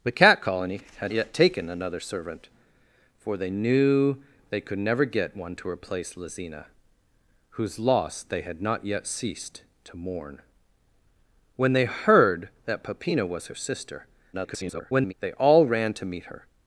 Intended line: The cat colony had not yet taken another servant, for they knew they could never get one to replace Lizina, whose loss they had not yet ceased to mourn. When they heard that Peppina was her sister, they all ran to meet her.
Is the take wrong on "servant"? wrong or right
right